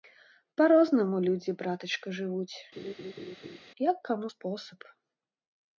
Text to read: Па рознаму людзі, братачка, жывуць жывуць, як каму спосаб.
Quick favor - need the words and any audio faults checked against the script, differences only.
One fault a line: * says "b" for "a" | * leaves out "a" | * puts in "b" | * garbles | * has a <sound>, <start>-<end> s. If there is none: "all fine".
* leaves out "жывуць"
* has a laugh, 2.8-3.6 s